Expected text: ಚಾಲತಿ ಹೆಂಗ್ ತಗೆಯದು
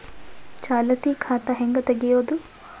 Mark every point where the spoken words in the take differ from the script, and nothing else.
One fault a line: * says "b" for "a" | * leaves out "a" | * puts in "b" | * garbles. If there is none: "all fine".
* puts in "ಖಾತಾ"